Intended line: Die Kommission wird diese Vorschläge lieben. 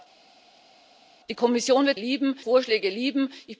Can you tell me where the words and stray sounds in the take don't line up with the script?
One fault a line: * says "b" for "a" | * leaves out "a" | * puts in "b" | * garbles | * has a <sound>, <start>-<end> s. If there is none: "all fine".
* says "lieben" for "diese"